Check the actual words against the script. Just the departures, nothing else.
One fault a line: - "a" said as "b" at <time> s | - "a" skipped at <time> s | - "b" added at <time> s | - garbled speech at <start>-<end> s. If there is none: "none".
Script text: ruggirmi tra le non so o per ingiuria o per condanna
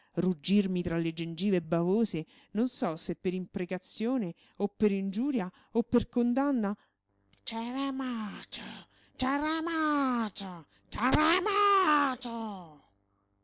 - "gengive bavose" added at 1.1 s
- "se per imprecazione" added at 3.0 s